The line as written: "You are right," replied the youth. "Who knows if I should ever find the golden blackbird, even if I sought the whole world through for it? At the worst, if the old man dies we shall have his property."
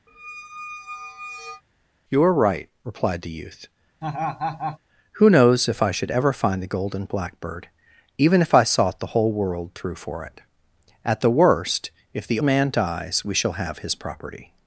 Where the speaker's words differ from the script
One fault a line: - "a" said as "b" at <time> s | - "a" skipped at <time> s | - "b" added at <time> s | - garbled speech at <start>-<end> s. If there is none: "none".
- "old" skipped at 12.4 s